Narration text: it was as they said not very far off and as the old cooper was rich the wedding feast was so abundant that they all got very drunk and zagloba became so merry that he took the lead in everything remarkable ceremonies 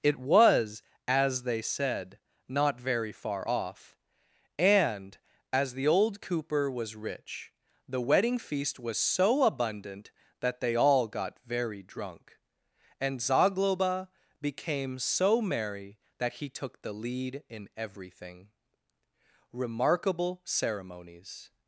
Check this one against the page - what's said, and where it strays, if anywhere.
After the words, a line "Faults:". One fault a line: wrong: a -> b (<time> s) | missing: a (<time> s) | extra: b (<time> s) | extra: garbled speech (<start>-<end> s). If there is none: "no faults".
it was as they said not very far off and as the old cooper was rich the wedding feast was so abundant that they all got very drunk and zagloba became so merry that he took the lead in everything remarkable ceremonies
Faults:
no faults